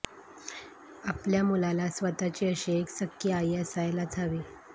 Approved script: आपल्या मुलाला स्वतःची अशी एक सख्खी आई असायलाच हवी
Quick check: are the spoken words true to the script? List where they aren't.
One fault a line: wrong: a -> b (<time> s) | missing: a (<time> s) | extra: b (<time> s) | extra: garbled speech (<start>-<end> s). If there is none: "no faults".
no faults